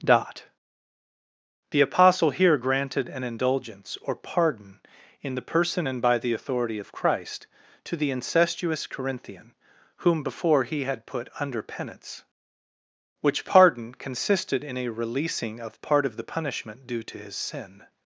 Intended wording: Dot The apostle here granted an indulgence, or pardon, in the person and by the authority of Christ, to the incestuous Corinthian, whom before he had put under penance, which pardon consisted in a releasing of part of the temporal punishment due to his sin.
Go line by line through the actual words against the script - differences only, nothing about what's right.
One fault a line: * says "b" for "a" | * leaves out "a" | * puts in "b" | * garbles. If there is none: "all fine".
* leaves out "temporal"